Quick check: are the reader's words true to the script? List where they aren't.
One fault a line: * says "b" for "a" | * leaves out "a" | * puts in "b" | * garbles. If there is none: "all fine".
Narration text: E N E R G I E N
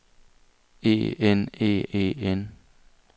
* leaves out "R G I"